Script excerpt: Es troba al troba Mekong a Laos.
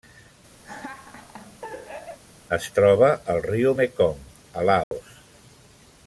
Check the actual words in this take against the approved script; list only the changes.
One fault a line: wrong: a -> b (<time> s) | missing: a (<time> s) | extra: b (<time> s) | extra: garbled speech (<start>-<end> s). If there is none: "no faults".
wrong: troba -> riu (3.5 s)